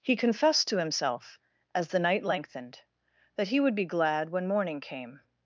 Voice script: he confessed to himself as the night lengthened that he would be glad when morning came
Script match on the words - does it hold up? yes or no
yes